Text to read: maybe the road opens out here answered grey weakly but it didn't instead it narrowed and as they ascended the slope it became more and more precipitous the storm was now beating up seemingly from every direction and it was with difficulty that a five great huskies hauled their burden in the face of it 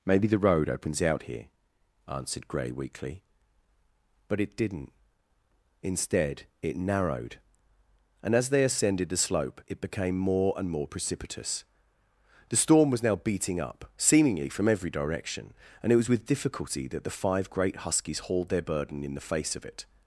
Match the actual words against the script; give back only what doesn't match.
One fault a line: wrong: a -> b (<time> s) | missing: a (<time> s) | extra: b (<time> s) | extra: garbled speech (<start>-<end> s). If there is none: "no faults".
wrong: a -> the (17.0 s)